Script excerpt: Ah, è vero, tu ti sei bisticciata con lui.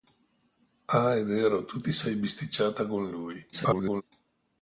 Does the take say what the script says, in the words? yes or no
no